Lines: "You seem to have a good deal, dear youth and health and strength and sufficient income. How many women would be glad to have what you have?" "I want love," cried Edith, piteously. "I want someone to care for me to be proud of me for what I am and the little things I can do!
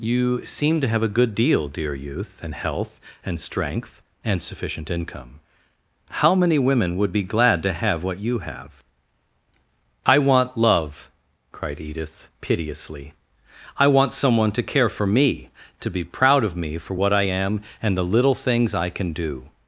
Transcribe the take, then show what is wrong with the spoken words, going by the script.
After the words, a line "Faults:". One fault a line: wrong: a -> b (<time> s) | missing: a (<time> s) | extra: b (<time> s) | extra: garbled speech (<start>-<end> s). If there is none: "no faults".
"You seem to have a good deal, dear youth and health and strength and sufficient income. How many women would be glad to have what you have?" "I want love," cried Edith, piteously. "I want someone to care for me to be proud of me for what I am and the little things I can do!
Faults:
no faults